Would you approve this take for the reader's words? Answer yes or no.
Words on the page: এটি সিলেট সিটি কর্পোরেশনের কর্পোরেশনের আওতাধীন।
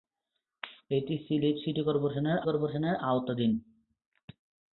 yes